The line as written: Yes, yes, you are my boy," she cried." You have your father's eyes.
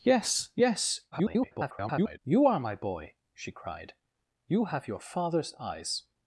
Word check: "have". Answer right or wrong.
right